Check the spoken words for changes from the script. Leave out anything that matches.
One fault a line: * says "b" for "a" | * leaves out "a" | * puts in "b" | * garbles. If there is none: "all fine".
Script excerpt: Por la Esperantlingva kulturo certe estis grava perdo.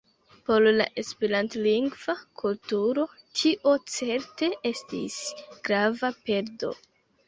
* puts in "tio"